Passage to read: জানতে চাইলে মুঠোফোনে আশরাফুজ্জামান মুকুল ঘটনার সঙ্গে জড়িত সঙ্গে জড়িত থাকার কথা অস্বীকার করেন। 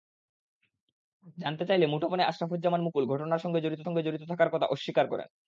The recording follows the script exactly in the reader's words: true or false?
true